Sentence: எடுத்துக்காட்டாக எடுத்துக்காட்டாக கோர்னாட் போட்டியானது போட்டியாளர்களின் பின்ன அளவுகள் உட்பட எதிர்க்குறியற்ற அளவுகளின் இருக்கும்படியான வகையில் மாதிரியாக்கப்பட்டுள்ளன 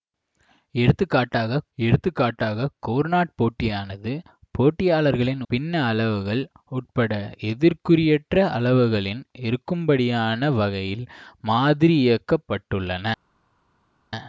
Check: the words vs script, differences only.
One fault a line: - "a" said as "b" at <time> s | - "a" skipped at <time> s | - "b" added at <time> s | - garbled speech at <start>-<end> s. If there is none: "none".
none